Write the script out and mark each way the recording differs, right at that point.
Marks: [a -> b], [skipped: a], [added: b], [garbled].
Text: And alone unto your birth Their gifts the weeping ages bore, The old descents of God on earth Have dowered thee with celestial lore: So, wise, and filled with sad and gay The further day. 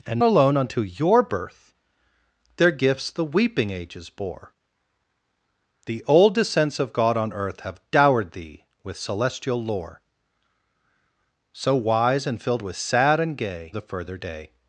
And alone unto your birth Their gifts the weeping ages bore, The old descents of God on earth Have dowered thee with celestial lore: So, wise, and filled with sad and gay The further day.